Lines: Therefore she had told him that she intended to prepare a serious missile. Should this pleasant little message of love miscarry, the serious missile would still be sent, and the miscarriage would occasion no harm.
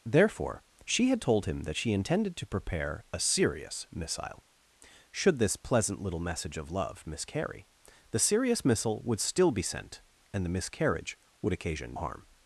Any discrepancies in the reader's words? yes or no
yes